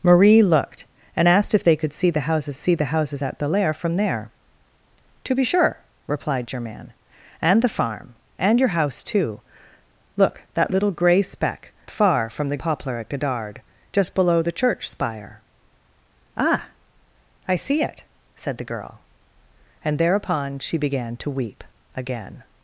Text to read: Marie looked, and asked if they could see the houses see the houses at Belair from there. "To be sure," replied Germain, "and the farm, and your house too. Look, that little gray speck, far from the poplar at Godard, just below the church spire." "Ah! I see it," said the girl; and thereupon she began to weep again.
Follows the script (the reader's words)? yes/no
yes